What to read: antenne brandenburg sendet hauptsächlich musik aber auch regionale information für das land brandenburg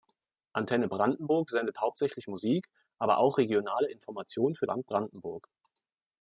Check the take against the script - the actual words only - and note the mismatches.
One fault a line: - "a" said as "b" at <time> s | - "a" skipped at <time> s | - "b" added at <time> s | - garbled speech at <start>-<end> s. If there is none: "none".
- "das" skipped at 4.7 s